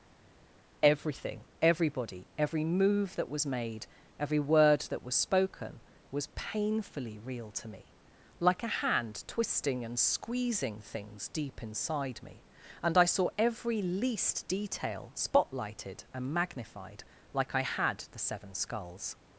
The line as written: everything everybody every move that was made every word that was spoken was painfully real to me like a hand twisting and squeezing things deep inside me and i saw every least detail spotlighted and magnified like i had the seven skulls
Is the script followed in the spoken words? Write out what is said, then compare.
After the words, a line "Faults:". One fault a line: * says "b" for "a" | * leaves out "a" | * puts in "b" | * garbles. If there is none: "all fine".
everything everybody every move that was made every word that was spoken was painfully real to me like a hand twisting and squeezing things deep inside me and i saw every least detail spotlighted and magnified like i had the seven skulls
Faults:
all fine